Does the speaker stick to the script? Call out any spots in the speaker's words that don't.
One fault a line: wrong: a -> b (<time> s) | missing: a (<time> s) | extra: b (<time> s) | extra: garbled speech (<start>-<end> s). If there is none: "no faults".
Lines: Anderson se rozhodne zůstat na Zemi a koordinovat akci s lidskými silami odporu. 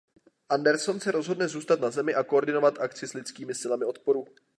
no faults